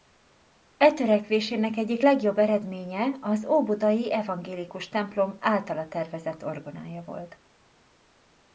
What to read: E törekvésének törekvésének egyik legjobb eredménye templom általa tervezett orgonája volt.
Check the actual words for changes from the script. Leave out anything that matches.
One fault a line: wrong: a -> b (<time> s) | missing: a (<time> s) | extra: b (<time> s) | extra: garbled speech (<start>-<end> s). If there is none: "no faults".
missing: törekvésének (1.8 s)
extra: az óbudai evangélikus (3.2 s)